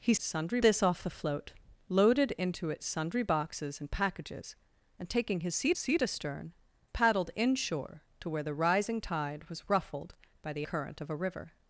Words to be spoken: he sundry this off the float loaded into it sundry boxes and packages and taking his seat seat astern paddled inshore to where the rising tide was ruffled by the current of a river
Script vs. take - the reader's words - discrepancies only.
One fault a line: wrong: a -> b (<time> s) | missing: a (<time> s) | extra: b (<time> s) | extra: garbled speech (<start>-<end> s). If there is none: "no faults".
no faults